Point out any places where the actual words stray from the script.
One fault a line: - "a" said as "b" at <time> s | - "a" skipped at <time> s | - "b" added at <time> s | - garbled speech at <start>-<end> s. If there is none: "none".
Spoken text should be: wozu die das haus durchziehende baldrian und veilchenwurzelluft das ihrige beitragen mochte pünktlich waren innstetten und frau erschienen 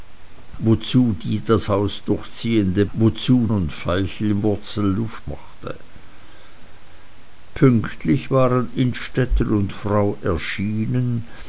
- "baldrian" said as "wozu" at 2.9 s
- "das ihrige beitragen" skipped at 5.2 s